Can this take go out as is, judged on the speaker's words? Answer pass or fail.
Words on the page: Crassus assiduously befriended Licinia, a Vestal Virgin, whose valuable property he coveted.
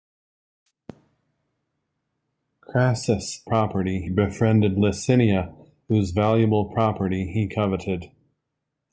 fail